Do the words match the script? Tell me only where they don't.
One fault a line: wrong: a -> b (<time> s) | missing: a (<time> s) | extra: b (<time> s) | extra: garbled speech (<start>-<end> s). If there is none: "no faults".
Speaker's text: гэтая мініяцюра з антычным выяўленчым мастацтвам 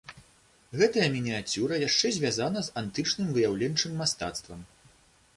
extra: яшчэ звязана (1.9 s)